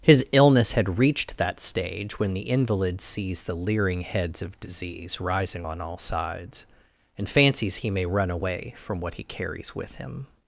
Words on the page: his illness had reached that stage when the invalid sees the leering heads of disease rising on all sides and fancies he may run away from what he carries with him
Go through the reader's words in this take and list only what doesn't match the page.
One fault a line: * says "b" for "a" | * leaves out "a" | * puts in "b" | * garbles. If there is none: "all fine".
all fine